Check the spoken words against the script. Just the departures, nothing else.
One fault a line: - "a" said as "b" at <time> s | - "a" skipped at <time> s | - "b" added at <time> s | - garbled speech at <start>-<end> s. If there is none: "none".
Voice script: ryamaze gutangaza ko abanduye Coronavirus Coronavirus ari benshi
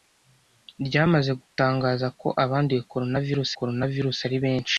none